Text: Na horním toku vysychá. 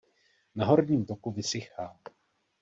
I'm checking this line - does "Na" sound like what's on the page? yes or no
yes